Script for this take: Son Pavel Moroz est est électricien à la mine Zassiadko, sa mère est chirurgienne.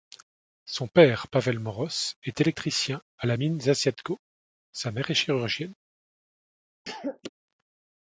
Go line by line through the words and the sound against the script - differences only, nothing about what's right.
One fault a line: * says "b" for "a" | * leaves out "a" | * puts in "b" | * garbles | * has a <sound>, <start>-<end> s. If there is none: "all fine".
* puts in "père"
* leaves out "est"
* has a cough, 6.8-7.3 s